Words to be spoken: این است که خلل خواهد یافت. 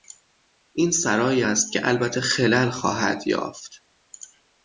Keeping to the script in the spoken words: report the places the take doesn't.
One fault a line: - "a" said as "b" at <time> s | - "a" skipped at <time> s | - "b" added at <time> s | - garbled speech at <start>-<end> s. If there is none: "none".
- "سرایی" added at 0.9 s
- "البته" added at 1.9 s